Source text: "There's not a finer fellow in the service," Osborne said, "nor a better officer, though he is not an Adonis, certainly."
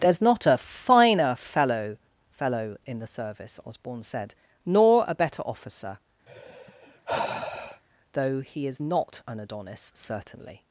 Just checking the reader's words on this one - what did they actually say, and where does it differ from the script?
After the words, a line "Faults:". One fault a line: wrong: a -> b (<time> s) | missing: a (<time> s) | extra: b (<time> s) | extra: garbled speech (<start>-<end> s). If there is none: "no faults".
"There's not a finer fellow fellow in the service," Osborne said, "nor a better officer, though he is not an Adonis, certainly."
Faults:
extra: fellow (2.4 s)